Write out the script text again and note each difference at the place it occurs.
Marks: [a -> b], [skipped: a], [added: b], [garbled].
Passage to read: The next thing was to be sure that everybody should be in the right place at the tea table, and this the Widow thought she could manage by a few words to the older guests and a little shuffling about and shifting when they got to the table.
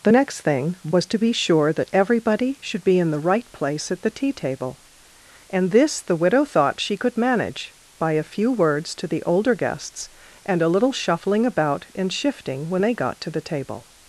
The next thing was to be sure that everybody should be in the right place at the tea table, and this the Widow thought she could manage by a few words to the older guests and a little shuffling about and shifting when they got to the table.